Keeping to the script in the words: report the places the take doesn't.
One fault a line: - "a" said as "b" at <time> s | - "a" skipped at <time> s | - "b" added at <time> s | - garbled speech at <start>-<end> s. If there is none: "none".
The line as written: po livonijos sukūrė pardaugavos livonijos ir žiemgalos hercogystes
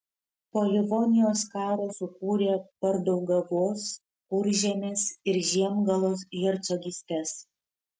- "karo" added at 1.6 s
- "livonijos" said as "kuržemės" at 4.4 s